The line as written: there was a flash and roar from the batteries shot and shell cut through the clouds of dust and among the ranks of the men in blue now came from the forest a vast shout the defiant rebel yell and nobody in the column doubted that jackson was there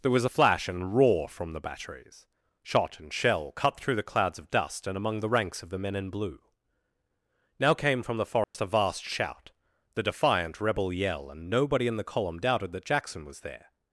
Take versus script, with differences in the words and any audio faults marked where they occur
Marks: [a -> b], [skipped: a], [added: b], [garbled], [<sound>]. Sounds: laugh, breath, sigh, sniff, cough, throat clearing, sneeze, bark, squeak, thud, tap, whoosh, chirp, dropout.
there was a flash and roar from the batteries shot and shell cut through the clouds of dust and among the ranks of the men in blue now came from the forest [dropout] a vast shout the defiant rebel yell and nobody in the column doubted that jackson was there